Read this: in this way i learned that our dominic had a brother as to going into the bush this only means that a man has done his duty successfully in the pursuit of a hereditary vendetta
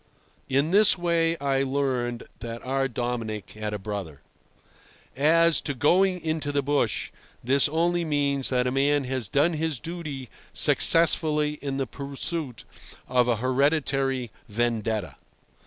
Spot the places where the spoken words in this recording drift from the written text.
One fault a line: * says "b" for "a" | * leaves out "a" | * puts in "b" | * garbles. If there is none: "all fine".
all fine